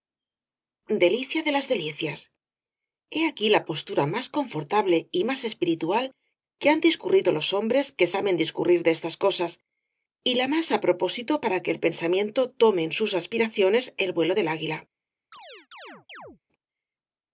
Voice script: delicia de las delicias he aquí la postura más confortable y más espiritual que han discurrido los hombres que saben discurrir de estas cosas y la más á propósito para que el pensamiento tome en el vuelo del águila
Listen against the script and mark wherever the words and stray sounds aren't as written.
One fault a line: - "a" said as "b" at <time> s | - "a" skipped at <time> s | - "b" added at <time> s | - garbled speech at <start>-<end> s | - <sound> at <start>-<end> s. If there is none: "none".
- "sus aspiraciones" added at 13.0 s
- chirp at 15.3-16.4 s